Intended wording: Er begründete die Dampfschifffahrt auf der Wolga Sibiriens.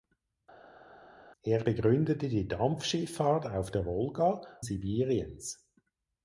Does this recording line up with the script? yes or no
yes